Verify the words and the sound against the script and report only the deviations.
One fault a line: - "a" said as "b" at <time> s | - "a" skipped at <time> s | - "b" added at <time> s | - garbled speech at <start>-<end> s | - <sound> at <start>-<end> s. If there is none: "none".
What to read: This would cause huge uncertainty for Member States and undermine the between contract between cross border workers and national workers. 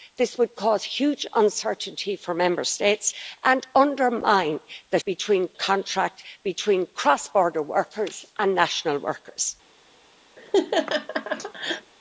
- laugh at 10.4-11.9 s